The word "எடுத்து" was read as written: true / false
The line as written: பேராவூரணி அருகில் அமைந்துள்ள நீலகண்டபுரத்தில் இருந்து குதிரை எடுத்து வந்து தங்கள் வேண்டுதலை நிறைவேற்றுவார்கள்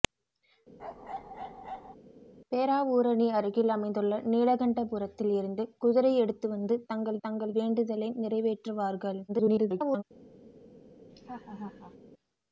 true